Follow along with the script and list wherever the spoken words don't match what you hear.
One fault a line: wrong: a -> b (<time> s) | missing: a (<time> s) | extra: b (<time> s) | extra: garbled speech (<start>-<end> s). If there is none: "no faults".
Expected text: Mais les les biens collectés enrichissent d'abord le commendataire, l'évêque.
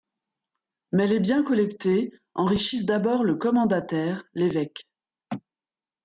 missing: les (1.2 s)